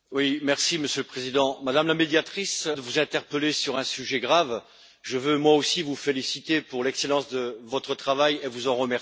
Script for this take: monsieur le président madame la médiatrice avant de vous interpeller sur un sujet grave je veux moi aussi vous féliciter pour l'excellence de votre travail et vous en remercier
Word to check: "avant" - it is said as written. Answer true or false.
false